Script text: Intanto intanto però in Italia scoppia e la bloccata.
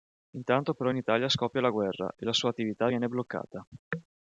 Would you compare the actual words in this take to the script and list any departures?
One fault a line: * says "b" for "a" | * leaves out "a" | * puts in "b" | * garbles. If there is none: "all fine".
* leaves out "intanto"
* puts in "la guerra"
* puts in "sua attività viene"